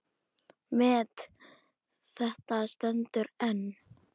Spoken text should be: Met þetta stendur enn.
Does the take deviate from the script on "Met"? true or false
false